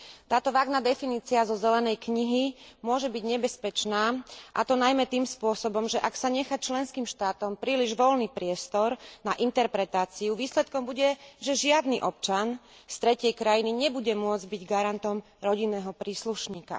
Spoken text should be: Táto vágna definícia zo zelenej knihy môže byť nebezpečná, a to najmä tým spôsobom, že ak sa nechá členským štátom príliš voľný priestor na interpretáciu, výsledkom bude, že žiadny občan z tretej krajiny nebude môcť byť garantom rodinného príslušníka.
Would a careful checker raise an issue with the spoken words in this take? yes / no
no